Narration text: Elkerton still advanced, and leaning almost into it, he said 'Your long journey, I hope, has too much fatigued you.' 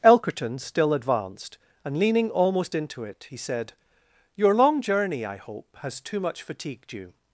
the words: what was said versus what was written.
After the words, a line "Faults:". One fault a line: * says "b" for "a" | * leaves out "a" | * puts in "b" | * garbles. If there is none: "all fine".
Elkerton still advanced, and leaning almost into it, he said 'Your long journey, I hope, has too much fatigued you.'
Faults:
all fine